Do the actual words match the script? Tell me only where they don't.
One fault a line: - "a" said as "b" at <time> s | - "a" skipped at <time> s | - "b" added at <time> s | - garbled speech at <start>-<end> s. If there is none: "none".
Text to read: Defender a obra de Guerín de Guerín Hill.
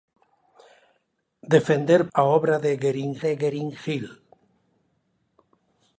none